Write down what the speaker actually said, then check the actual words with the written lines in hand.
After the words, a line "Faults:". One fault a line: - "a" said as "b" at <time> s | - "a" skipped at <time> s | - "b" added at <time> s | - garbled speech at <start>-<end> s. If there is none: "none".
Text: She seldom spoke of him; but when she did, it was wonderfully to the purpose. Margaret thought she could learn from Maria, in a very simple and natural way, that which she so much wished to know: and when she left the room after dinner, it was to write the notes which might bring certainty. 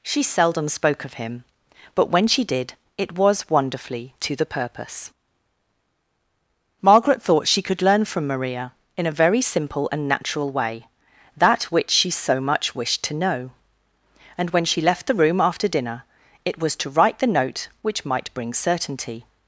She seldom spoke of him; but when she did, it was wonderfully to the purpose. Margaret thought she could learn from Maria, in a very simple and natural way, that which she so much wished to know: and when she left the room after dinner, it was to write the note which might bring certainty.
Faults:
- "notes" said as "note" at 17.3 s